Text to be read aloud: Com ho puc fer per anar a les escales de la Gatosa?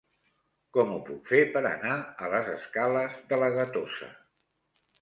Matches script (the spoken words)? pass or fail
pass